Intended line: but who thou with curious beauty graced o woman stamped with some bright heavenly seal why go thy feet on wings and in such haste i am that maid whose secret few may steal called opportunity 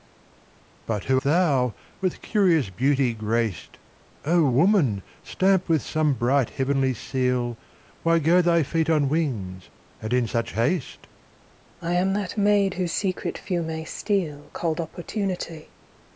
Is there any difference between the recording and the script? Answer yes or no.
no